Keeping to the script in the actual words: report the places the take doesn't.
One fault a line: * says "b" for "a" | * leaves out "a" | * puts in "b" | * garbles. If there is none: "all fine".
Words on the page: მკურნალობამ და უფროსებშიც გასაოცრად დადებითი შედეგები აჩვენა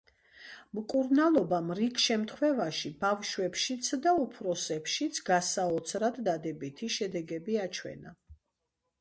* puts in "რიგ შემთხვევაში ბავშვებშიც"